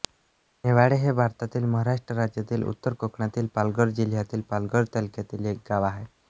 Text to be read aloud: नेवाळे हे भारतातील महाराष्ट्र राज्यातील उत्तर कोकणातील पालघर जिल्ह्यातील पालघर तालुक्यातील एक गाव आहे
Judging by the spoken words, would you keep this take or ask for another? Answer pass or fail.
pass